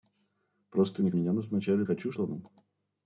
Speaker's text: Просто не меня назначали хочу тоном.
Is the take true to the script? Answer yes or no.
yes